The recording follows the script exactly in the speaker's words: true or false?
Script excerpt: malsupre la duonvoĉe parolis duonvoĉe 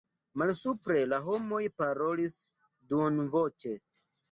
false